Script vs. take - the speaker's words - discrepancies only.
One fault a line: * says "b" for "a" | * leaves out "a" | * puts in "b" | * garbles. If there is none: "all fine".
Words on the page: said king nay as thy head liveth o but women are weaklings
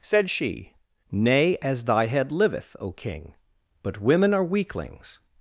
* says "she" for "king"
* puts in "king"